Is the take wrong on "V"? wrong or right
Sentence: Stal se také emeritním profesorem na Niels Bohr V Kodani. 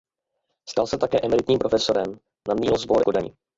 right